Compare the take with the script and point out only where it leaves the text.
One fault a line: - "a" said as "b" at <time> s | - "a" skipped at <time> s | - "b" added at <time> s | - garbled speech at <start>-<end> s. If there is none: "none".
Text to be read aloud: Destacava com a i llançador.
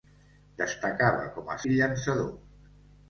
none